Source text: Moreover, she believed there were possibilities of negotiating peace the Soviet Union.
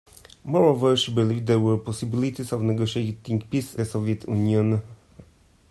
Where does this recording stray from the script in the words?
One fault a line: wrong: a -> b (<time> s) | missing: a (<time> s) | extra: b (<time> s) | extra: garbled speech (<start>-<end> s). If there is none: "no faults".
no faults